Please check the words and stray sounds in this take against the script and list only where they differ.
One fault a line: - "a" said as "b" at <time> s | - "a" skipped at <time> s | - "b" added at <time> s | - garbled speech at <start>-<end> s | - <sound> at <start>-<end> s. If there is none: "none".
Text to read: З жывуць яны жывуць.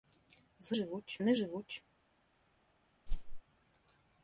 - whoosh at 3.1-3.4 s